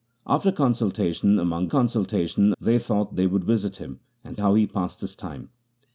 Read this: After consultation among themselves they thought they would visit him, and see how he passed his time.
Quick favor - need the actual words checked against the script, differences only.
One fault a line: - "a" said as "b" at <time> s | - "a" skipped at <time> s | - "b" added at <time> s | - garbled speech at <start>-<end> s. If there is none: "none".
- "themselves" said as "consultation" at 1.7 s
- "see" skipped at 4.4 s